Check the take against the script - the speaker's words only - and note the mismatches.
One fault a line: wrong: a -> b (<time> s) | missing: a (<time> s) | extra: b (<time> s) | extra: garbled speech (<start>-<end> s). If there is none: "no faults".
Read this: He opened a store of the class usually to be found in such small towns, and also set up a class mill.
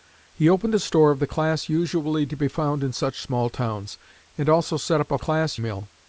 no faults